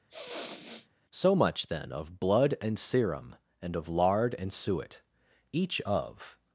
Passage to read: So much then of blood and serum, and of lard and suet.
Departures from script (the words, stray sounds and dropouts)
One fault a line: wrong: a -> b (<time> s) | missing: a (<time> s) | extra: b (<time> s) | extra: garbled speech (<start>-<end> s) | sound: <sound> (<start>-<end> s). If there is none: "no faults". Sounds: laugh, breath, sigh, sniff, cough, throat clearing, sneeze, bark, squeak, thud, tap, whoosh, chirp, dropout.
sound: sniff (0.1-0.9 s)
extra: Each of (5.5 s)